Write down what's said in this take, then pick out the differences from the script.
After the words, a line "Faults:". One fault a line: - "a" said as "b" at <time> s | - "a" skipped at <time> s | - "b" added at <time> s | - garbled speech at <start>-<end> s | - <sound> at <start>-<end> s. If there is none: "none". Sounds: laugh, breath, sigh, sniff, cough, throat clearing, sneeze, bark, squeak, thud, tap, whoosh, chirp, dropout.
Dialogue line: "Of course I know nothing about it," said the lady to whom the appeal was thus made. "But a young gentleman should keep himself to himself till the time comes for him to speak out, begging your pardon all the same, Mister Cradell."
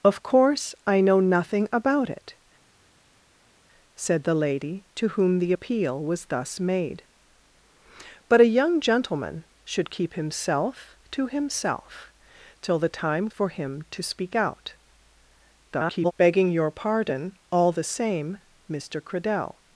"Of course I know nothing about it," said the lady to whom the appeal was thus made. "But a young gentleman should keep himself to himself till the time for him to speak out, [garbled] begging your pardon all the same, Mister Cradell."
Faults:
- "comes" skipped at 13.3 s
- garbled speech at 15.7-16.1 s